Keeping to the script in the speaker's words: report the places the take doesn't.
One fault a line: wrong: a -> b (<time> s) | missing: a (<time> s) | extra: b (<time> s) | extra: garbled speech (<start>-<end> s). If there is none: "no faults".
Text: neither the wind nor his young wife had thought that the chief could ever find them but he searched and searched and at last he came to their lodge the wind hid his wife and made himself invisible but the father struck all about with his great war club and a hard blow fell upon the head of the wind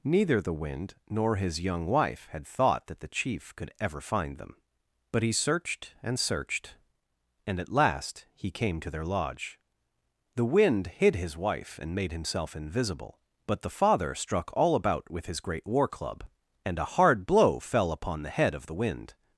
no faults